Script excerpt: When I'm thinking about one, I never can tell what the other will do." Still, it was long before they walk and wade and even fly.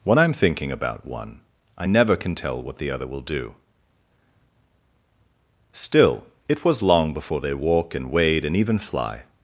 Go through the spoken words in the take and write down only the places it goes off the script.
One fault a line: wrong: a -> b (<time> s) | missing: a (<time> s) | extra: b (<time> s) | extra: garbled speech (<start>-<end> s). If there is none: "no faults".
no faults